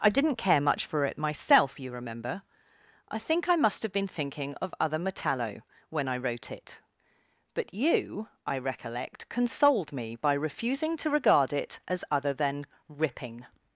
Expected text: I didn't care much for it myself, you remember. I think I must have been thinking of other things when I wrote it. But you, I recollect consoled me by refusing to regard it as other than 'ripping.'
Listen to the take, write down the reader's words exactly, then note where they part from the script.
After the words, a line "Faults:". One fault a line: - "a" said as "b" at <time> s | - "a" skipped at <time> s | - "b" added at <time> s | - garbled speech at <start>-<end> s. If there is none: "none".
I didn't care much for it myself, you remember. I think I must have been thinking of other metallo when I wrote it. But you, I recollect consoled me by refusing to regard it as other than 'ripping.'
Faults:
- "things" said as "metallo" at 5.0 s